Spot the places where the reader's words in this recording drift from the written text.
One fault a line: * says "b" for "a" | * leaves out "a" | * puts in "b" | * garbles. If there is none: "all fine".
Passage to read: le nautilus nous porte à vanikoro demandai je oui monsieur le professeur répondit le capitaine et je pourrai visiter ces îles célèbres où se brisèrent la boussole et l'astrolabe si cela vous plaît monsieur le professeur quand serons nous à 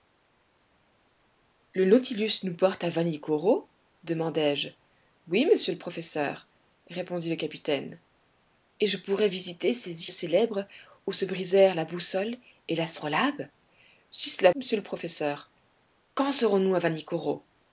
* leaves out "îles"
* leaves out "vous plaît"